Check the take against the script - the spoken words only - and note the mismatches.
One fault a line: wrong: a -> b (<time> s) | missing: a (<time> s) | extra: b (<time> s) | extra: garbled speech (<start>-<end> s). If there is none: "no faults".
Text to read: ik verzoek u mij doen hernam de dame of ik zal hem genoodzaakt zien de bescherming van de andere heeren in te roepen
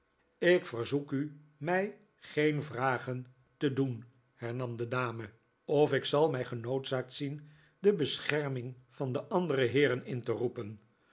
extra: geen vragen te (2.1 s)
wrong: hem -> mij (6.3 s)